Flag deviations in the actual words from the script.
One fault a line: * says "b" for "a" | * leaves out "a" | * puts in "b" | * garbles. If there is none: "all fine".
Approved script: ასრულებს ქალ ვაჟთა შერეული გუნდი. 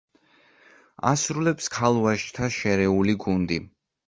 all fine